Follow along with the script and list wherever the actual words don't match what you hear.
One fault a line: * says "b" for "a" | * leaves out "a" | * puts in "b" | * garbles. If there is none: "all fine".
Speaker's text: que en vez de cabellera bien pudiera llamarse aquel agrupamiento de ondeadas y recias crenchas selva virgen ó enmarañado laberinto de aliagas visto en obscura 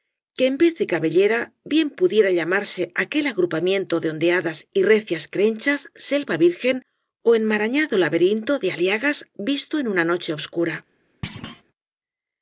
* puts in "una noche"